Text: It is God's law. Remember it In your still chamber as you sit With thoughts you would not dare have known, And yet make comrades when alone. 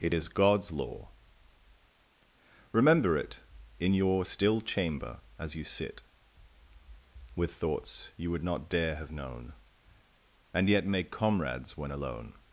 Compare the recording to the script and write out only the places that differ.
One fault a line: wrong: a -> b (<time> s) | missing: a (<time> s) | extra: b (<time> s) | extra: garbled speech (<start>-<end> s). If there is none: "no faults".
no faults